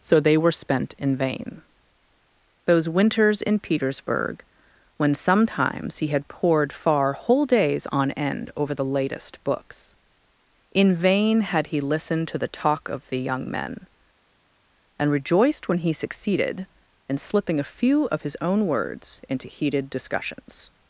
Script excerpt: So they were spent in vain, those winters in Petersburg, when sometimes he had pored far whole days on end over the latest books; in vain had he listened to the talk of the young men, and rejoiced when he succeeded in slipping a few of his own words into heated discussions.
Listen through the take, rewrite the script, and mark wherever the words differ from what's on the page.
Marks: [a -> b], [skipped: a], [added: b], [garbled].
So they were spent in vain, those winters in Petersburg, when sometimes he had pored far whole days on end over the latest books; in vain had he listened to the talk of the young men, and rejoiced when he succeeded in slipping a few of his own words into heated discussions.